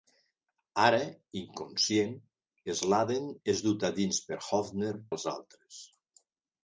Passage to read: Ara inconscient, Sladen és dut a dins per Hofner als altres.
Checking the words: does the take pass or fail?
pass